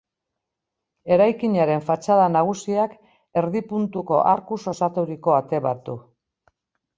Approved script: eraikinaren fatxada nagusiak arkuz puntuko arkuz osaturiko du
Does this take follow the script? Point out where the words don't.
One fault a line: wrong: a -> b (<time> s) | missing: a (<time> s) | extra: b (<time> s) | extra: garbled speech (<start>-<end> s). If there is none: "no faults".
wrong: arkuz -> erdi (3.4 s)
extra: ate bat (5.4 s)